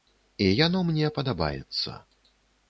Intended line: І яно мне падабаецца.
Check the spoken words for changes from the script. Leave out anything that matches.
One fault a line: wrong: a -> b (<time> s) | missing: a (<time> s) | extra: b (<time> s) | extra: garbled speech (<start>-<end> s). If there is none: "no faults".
no faults